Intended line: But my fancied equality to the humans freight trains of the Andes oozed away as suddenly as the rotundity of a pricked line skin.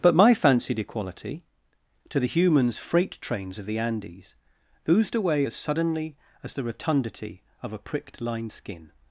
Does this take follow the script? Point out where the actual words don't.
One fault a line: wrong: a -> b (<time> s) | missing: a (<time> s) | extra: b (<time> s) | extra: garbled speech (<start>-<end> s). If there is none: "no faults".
no faults